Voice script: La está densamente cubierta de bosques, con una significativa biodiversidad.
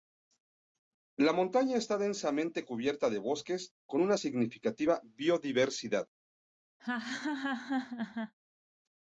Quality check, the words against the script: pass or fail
fail